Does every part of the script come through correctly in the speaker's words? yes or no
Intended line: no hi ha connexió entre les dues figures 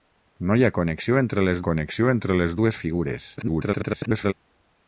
no